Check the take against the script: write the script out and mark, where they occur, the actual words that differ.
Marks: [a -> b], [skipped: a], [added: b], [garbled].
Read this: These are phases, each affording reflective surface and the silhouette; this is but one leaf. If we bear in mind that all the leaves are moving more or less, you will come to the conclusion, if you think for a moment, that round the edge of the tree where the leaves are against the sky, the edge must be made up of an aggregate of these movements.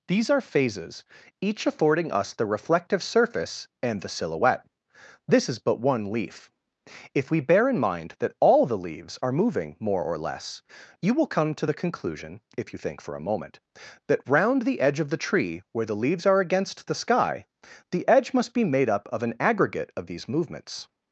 These are phases, each affording [added: us the] reflective surface and the silhouette; this is but one leaf. If we bear in mind that all the leaves are moving more or less, you will come to the conclusion, if you think for a moment, that round the edge of the tree where the leaves are against the sky, the edge must be made up of an aggregate of these movements.